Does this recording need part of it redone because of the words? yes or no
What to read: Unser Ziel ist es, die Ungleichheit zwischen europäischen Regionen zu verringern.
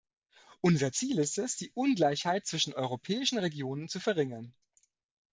no